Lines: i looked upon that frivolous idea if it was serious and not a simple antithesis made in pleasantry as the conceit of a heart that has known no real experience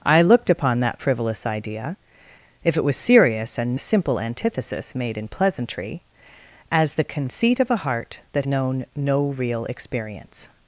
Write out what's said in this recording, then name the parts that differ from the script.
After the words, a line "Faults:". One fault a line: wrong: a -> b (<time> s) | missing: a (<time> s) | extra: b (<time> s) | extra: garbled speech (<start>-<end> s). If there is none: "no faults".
i looked upon that frivolous idea if it was serious and a simple antithesis made in pleasantry as the conceit of a heart that known no real experience
Faults:
missing: not (3.8 s)
missing: has (8.5 s)